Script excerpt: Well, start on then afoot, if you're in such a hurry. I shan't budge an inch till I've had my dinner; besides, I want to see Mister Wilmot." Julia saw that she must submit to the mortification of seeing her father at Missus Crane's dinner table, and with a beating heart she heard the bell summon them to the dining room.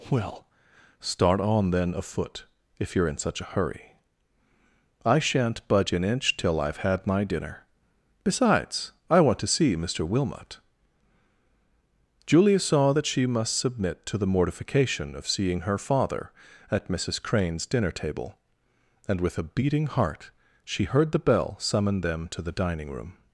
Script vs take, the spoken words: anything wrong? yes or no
no